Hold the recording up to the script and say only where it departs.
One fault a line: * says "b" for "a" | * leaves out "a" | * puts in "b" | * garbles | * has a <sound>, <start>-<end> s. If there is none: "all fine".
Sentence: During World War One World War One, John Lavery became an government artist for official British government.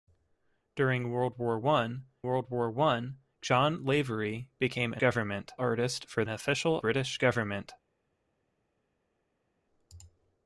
all fine